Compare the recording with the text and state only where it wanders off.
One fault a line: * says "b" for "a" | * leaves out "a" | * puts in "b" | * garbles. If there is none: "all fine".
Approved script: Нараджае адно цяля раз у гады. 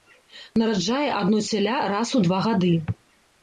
* puts in "два"